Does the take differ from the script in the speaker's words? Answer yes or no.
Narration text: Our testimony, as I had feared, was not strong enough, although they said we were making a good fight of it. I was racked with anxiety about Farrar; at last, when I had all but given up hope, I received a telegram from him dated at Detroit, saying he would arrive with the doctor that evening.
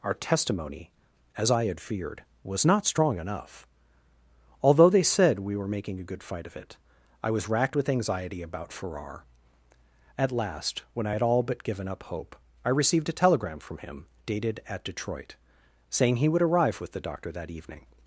no